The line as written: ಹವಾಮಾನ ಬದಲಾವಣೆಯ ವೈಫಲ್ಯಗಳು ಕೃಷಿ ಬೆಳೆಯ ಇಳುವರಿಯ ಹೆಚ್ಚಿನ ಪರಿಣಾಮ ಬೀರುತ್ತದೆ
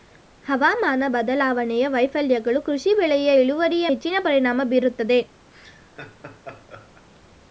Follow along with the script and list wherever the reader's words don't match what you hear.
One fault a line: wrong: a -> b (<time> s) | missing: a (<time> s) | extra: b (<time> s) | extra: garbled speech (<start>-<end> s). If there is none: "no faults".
no faults